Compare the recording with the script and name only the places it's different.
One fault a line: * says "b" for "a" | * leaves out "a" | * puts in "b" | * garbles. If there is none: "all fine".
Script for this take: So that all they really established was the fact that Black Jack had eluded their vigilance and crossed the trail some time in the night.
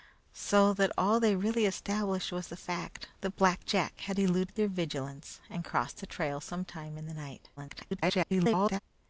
* garbles